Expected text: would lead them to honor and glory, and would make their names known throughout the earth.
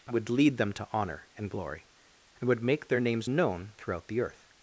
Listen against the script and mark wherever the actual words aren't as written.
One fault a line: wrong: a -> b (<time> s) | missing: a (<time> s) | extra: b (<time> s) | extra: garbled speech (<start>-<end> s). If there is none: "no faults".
no faults